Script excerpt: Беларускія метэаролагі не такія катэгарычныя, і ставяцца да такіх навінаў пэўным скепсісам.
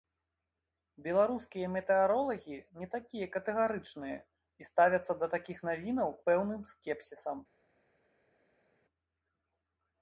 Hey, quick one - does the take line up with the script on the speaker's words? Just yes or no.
yes